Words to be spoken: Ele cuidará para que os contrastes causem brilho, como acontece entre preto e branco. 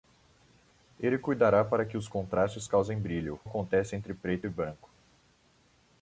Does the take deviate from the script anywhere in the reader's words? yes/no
yes